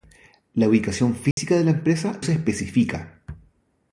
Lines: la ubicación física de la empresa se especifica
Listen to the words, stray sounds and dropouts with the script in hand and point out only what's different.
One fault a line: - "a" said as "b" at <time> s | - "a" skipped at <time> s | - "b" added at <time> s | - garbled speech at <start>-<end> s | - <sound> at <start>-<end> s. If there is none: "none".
- dropout at 1.3-1.4 s